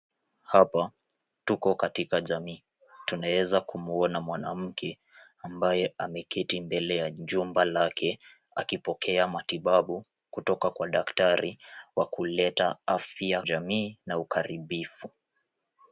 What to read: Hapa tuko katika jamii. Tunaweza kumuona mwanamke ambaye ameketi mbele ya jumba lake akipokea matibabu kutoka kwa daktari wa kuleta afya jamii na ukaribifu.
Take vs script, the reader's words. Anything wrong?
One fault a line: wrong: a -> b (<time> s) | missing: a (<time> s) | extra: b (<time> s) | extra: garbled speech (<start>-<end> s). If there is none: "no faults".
no faults